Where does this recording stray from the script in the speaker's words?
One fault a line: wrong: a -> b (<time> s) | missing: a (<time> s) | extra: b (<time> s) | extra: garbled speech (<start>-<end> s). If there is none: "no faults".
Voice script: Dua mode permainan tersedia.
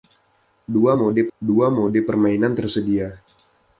extra: dua mode (1.4 s)